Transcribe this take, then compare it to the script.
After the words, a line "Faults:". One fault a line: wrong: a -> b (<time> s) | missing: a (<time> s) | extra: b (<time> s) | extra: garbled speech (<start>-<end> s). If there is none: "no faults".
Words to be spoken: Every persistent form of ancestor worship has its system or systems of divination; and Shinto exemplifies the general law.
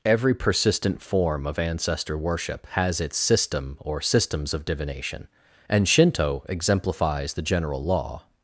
Every persistent form of ancestor worship has its system or systems of divination; and Shinto exemplifies the general law.
Faults:
no faults